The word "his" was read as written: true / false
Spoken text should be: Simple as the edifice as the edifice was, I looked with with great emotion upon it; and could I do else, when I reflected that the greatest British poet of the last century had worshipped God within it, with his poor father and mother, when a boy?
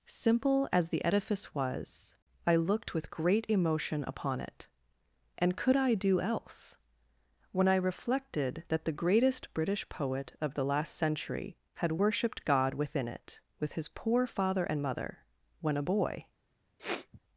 true